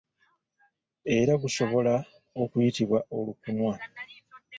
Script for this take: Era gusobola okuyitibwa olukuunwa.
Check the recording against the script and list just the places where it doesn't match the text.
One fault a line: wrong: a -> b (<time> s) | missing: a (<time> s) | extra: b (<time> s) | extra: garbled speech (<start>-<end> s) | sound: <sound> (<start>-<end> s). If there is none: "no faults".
no faults